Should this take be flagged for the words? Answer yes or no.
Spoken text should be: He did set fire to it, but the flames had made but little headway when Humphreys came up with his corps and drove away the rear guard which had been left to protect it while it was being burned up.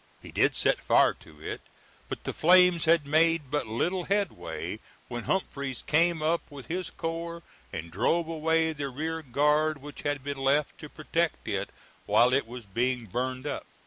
no